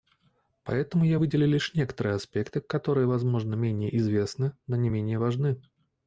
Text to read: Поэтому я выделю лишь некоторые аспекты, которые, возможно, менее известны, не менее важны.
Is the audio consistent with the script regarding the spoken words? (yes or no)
no